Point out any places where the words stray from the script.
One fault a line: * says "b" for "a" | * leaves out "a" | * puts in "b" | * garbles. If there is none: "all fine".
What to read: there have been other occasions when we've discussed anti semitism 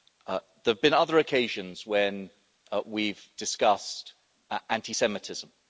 all fine